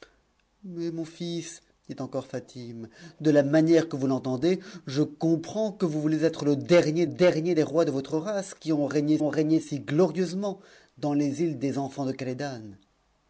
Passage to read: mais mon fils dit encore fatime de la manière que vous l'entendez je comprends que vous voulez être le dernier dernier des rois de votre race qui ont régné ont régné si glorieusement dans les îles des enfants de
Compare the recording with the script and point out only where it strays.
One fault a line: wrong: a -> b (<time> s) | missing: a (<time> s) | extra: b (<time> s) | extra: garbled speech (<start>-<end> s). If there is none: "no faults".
no faults